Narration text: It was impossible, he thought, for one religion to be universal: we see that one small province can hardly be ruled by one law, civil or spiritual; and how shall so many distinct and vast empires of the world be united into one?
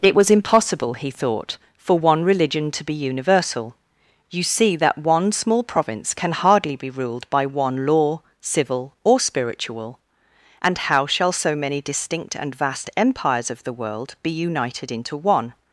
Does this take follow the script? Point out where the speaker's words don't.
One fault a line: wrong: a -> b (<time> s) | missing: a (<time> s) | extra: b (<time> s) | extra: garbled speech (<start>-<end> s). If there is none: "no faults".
wrong: we -> you (4.3 s)